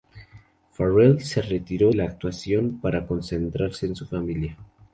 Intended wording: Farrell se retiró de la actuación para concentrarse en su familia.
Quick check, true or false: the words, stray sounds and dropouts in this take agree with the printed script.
false